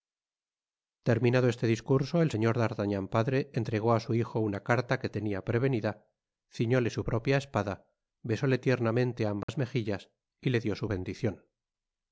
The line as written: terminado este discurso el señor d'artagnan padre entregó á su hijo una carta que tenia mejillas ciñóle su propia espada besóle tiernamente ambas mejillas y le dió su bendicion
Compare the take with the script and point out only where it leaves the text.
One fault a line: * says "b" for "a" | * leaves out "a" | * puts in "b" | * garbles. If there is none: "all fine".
* says "prevenida" for "mejillas"